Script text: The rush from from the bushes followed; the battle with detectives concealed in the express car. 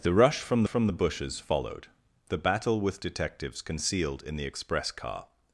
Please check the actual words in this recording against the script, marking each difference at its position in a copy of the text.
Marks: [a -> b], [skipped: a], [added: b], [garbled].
The rush from from the bushes followed; the battle with detectives concealed in the express car.